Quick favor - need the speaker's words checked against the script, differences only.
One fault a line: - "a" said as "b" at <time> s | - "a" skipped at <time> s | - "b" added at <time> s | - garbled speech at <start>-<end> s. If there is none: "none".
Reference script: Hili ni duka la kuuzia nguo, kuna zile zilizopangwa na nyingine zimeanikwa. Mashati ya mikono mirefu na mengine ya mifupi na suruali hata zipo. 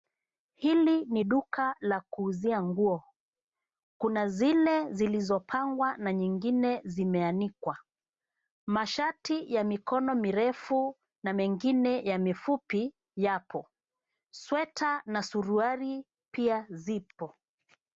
- "yapo sweta" added at 13.1 s
- "hata" said as "pia" at 16.3 s